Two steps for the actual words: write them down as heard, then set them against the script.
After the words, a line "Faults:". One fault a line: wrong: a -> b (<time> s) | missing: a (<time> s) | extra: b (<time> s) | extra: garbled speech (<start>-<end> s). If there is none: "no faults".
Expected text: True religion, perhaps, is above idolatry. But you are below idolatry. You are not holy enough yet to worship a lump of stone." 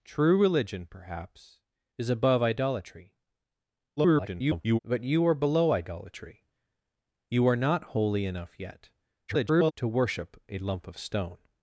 True religion, perhaps, is above idolatry. [garbled] But you are below idolatry. You are not holy enough yet [garbled] to worship a lump of stone."
Faults:
extra: garbled speech (4.0-4.8 s)
extra: garbled speech (9.3-9.7 s)